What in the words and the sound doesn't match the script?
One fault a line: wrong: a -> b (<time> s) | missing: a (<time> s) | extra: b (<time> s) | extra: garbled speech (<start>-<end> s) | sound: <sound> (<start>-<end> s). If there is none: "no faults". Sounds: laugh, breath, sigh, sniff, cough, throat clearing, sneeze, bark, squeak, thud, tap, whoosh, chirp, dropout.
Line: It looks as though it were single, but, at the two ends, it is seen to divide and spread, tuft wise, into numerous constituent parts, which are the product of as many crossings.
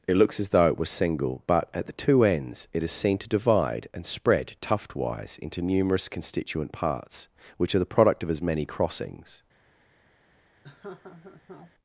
wrong: were -> was (0.8 s)
sound: laugh (10.6-11.7 s)